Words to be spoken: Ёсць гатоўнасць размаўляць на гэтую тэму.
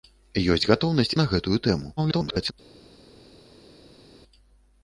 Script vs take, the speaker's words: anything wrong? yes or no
yes